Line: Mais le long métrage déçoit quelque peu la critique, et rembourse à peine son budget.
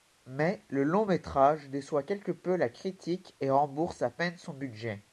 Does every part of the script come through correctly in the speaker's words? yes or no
yes